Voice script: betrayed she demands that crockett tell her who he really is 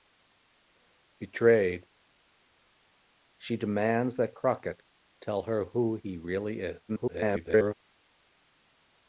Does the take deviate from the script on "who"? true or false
false